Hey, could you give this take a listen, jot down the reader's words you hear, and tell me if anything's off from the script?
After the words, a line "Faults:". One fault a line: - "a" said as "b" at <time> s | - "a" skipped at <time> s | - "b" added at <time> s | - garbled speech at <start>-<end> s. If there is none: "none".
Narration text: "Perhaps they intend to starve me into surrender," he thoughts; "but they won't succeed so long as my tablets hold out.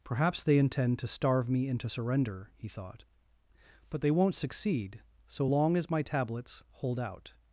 "Perhaps they intend to starve me into surrender," he thought; "but they won't succeed so long as my tablets hold out.
Faults:
- "thoughts" said as "thought" at 2.7 s